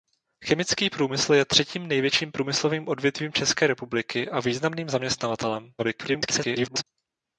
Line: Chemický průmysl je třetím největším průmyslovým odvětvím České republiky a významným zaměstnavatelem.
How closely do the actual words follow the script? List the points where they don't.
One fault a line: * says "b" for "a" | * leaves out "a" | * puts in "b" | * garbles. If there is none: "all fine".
* garbles